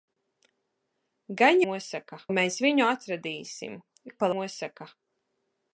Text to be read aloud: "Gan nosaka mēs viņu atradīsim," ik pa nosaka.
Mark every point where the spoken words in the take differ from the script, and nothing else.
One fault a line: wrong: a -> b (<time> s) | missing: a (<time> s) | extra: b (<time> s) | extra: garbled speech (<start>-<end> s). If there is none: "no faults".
no faults